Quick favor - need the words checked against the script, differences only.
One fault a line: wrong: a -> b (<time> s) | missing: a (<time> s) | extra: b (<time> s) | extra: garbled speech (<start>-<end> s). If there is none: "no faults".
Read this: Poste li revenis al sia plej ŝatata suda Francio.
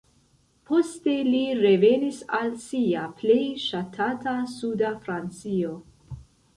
no faults